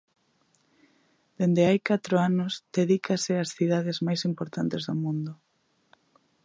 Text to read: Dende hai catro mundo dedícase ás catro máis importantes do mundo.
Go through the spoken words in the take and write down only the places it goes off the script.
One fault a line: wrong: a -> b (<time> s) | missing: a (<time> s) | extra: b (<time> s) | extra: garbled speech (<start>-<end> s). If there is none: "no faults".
wrong: mundo -> anos (2.3 s)
wrong: catro -> cidades (3.6 s)